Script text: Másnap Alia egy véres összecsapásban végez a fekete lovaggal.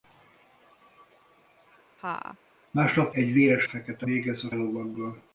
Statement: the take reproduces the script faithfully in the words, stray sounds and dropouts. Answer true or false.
false